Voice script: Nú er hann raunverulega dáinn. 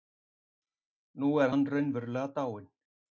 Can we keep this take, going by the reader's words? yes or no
yes